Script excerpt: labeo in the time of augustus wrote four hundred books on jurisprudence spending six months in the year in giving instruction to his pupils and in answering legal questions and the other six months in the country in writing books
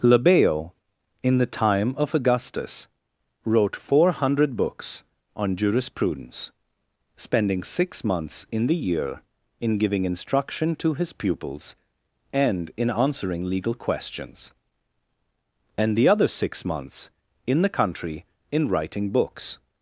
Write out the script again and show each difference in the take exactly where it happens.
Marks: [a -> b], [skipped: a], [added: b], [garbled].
labeo in the time of augustus wrote four hundred books on jurisprudence spending six months in the year in giving instruction to his pupils and in answering legal questions and the other six months in the country in writing books